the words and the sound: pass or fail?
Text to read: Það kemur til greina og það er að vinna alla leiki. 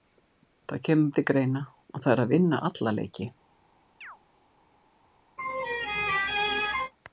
fail